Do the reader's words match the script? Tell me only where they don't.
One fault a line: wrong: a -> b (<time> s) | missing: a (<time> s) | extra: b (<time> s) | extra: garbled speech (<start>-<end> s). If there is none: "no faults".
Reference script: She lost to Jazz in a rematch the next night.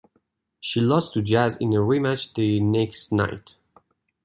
no faults